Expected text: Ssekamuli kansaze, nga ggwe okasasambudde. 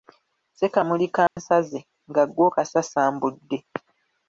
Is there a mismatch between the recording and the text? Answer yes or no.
no